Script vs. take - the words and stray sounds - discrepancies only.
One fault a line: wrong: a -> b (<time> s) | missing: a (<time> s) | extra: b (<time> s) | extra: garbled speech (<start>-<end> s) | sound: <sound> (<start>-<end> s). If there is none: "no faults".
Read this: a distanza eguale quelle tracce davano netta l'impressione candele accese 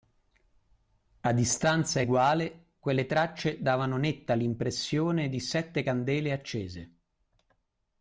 extra: di sette (5.3 s)